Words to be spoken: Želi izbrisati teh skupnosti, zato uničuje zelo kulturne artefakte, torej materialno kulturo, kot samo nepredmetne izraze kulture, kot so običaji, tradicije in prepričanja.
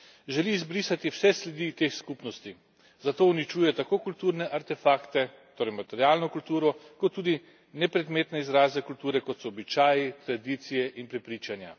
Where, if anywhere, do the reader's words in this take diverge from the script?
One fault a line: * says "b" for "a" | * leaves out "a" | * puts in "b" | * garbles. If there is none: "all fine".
* puts in "vse sledi"
* says "tako" for "zelo"
* says "tudi" for "samo"